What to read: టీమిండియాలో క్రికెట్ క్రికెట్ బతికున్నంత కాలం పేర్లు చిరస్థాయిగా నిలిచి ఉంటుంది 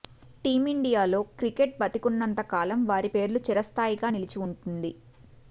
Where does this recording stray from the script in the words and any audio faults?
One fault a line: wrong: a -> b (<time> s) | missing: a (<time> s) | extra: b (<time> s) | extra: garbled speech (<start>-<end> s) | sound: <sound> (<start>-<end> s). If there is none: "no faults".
missing: క్రికెట్ (1.8 s)
extra: వారి (2.9 s)